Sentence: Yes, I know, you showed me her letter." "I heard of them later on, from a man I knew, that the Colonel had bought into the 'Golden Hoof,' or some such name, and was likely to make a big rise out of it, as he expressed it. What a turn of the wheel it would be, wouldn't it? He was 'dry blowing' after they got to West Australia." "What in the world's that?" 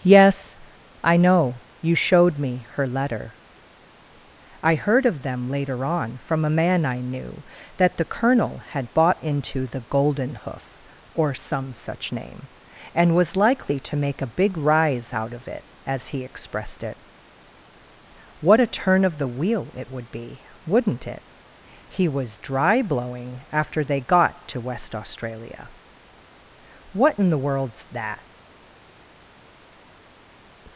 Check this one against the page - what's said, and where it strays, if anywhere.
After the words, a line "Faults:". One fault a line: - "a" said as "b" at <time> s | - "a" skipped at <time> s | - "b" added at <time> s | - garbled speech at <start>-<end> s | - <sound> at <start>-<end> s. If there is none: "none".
Yes, I know, you showed me her letter." "I heard of them later on, from a man I knew, that the Colonel had bought into the 'Golden Hoof,' or some such name, and was likely to make a big rise out of it, as he expressed it. What a turn of the wheel it would be, wouldn't it? He was 'dry blowing' after they got to West Australia." "What in the world's that?"
Faults:
none